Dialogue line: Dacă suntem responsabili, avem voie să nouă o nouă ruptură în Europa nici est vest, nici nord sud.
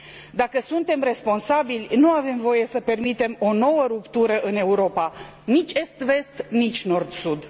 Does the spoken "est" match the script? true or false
true